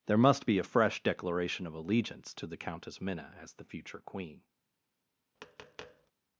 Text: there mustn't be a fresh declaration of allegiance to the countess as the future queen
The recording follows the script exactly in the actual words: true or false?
false